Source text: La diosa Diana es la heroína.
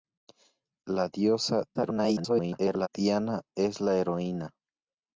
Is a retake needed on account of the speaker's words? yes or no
yes